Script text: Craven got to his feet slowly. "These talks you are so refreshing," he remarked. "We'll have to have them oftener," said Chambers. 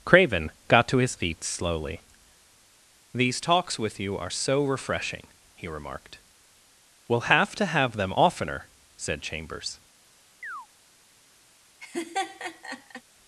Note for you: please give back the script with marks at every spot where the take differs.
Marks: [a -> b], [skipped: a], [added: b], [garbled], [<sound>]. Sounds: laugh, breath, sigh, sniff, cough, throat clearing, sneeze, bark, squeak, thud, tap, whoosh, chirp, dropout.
Craven got to his feet slowly. "These talks [added: with] you are so refreshing," he remarked. "We'll have to have them oftener," said Chambers. [chirp] [laugh]